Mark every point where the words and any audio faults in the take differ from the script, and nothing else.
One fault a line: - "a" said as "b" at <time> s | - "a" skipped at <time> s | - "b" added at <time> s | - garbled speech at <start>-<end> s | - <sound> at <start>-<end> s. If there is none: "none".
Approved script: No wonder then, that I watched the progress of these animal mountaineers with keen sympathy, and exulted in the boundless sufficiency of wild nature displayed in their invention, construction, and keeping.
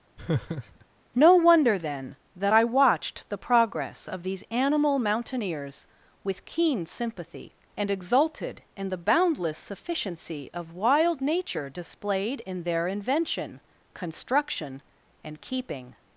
- laugh at 0.2-0.9 s